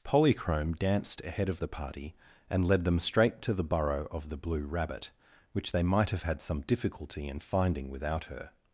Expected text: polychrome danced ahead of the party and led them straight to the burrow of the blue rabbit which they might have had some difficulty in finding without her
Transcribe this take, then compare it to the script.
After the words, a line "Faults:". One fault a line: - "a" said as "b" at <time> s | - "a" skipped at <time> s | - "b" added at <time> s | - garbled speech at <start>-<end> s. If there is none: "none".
polychrome danced ahead of the party and led them straight to the burrow of the blue rabbit which they might have had some difficulty in finding without her
Faults:
none